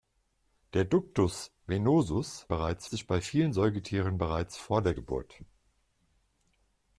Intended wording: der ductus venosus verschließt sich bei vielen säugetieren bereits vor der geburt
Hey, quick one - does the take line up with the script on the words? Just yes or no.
no